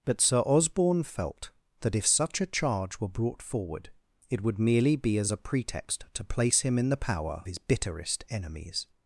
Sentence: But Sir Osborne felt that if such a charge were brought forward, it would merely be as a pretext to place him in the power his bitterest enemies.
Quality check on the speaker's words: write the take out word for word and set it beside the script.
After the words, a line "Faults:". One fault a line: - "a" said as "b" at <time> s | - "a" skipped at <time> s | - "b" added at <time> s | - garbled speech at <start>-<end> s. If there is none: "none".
But Sir Osborne felt that if such a charge were brought forward, it would merely be as a pretext to place him in the power his bitterest enemies.
Faults:
none